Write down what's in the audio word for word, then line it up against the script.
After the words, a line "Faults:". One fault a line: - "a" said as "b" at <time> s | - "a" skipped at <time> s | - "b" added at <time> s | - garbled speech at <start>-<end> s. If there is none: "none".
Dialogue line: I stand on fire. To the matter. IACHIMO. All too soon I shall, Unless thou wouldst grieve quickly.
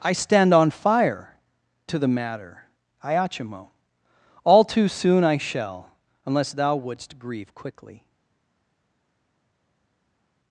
I stand on fire. To the matter. IACHIMO. All too soon I shall, Unless thou wouldst grieve quickly.
Faults:
none